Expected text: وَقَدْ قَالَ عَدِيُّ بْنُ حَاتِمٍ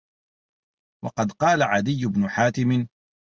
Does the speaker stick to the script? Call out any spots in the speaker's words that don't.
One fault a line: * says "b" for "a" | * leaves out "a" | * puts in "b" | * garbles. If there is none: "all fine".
all fine